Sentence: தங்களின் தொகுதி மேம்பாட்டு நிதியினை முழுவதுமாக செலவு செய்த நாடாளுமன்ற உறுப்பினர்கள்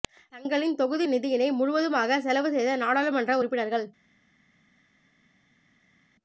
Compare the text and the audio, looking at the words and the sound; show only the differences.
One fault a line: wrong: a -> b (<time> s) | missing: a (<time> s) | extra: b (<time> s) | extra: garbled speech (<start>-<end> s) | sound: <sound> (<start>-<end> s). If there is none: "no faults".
missing: மேம்பாட்டு (1.1 s)